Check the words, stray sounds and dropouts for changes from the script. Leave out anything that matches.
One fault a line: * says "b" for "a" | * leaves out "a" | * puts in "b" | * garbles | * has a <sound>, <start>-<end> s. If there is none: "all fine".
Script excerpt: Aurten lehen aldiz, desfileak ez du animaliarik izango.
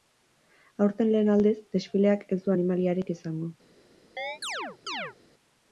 * has a chirp, 4.2-5.1 s